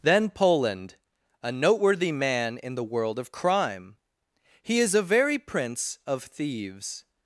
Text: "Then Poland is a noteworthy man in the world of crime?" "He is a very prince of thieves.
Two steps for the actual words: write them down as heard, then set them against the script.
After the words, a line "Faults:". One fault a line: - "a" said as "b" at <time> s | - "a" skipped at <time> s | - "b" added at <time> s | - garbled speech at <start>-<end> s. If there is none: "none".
"Then Poland a noteworthy man in the world of crime?" "He is a very prince of thieves.
Faults:
- "is" skipped at 0.9 s